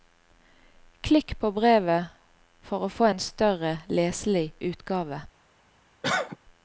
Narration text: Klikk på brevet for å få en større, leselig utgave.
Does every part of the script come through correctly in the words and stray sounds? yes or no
no